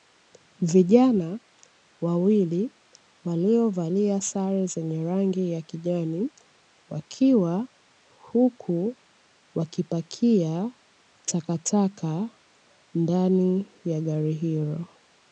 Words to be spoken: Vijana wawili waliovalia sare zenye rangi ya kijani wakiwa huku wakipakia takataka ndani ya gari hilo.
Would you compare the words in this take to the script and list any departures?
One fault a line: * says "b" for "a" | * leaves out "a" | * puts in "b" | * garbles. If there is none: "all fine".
all fine